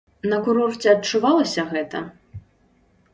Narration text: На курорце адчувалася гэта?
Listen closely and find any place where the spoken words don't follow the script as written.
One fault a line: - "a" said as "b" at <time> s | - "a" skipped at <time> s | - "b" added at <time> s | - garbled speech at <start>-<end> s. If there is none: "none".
none